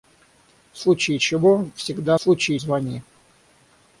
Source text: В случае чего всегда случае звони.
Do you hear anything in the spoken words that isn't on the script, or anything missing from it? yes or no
no